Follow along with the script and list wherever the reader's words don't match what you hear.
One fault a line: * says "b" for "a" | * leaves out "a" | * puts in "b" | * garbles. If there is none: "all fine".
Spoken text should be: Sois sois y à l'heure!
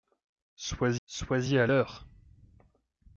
all fine